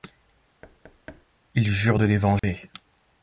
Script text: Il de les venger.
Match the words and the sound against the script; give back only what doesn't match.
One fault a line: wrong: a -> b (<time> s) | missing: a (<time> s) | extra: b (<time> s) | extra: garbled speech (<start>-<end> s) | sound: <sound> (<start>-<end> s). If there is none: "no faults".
sound: thud (0.6-1.3 s)
extra: jure (1.7 s)
sound: dropout (2.4-2.4 s)